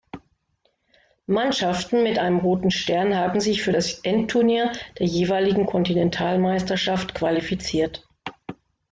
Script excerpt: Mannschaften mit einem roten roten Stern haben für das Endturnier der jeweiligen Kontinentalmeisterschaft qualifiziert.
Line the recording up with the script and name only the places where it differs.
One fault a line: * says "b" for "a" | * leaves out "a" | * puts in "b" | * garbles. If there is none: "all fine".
* leaves out "roten"
* puts in "sich"